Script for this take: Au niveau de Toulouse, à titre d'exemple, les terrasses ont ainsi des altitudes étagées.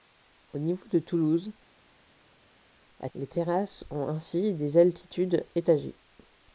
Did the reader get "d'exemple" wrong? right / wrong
wrong